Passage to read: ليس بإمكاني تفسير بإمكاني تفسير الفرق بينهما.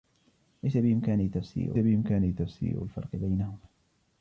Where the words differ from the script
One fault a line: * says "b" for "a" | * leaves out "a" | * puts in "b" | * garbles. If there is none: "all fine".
all fine